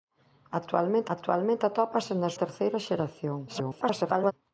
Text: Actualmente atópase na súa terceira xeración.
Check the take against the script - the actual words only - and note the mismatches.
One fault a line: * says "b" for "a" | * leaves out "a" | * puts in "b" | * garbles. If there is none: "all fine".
* puts in "actualmente"
* leaves out "súa"
* garbles